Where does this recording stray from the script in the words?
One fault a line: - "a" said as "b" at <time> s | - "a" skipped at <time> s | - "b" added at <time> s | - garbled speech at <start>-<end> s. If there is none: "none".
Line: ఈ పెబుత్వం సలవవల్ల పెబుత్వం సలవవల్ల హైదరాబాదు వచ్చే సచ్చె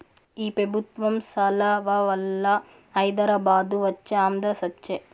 - "పెబుత్వం సలవవల్ల" skipped at 2.5 s
- "ఆంధ్ర" added at 4.2 s